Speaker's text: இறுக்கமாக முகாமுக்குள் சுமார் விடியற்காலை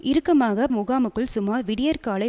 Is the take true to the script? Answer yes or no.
yes